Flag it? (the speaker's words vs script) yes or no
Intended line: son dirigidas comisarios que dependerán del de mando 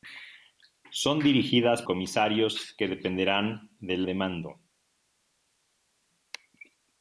no